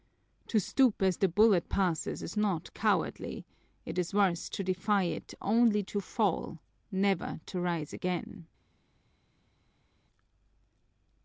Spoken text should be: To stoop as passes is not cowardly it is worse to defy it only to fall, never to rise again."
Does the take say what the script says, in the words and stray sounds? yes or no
no